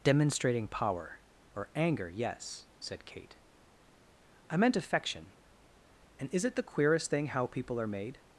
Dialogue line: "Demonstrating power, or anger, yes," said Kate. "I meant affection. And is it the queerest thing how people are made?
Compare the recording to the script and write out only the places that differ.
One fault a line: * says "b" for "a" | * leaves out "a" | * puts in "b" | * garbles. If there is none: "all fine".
all fine